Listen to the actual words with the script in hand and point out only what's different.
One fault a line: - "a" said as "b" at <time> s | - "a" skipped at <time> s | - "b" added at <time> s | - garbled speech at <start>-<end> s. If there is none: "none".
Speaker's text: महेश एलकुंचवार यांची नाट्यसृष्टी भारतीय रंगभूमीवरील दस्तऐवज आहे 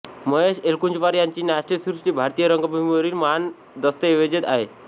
- "महान" added at 3.1 s